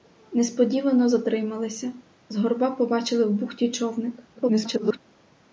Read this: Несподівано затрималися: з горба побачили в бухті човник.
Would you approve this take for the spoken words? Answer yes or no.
no